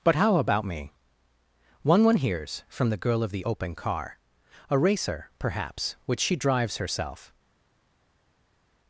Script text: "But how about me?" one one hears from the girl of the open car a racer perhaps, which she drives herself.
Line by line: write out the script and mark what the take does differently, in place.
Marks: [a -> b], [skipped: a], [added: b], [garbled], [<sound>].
"But how about me?" one one hears from the girl of the open car a racer perhaps, which she drives herself.